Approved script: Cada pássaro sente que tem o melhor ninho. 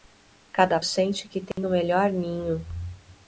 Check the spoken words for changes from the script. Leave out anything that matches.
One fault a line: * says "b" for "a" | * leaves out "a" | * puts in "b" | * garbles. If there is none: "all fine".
* leaves out "pássaro"